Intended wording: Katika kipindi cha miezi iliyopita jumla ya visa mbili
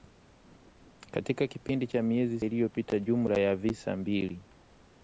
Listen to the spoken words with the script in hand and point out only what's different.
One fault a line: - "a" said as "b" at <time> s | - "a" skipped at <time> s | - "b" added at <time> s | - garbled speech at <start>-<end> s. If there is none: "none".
none